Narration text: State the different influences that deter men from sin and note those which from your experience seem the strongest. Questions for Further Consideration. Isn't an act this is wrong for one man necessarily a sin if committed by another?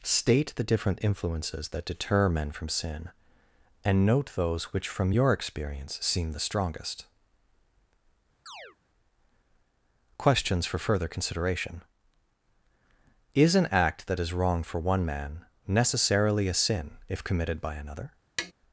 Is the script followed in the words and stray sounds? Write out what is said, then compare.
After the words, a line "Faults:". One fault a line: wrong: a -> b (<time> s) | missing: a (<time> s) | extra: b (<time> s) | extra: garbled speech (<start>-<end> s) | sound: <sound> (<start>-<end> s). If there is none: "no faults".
State the different influences that deter men from sin and note those which from your experience seem the strongest. Questions for Further Consideration. Is an act that is wrong for one man necessarily a sin if committed by another?
Faults:
sound: chirp (8.5-8.8 s)
wrong: Isn't -> Is (13.3 s)
wrong: this -> that (14.1 s)
sound: tap (18.4-18.5 s)